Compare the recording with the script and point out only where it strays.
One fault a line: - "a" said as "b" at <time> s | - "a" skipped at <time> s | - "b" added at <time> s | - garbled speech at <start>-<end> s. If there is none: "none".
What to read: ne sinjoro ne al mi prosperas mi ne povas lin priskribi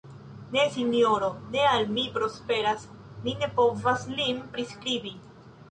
none